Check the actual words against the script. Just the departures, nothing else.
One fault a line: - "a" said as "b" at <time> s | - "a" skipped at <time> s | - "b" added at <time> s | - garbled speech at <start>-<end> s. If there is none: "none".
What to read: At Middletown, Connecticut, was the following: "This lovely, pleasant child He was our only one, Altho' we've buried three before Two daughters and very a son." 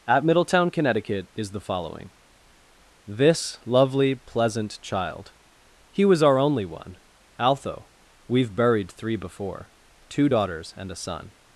- "was" said as "is" at 1.4 s
- "very" skipped at 10.9 s